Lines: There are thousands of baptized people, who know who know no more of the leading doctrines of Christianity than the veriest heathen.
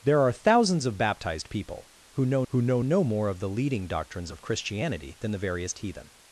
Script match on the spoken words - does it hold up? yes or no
yes